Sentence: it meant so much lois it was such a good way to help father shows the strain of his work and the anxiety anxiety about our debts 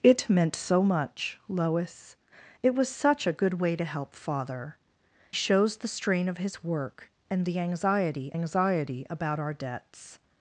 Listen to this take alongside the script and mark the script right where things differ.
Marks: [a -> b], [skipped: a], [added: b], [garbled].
it meant so much lois it was such a good way to help father shows the strain of his work and the anxiety anxiety about our debts